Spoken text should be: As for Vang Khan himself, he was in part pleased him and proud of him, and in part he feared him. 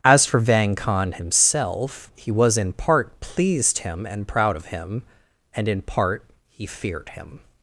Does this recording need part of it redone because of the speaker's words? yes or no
no